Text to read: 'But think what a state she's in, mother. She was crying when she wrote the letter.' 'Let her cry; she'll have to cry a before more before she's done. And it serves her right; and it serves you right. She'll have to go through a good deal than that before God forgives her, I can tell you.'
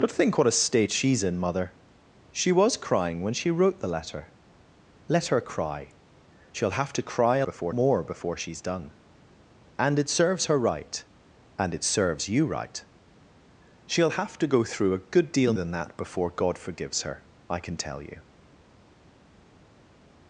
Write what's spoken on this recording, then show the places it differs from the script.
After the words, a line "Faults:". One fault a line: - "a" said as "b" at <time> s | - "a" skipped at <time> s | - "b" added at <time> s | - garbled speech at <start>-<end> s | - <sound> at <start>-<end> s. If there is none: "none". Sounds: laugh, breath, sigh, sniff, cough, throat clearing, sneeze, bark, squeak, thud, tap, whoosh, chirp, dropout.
'But think what a state she's in, mother. She was crying when she wrote the letter.' 'Let her cry; she'll have to cry a before more before she's done. And it serves her right; and it serves you right. She'll have to go through a good deal than that before God forgives her, I can tell you.'
Faults:
none